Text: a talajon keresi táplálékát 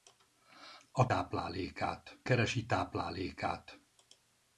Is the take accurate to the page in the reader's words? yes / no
no